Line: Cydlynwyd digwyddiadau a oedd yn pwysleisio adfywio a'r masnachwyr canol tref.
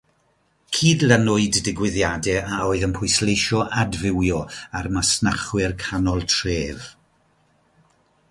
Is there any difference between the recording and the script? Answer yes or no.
no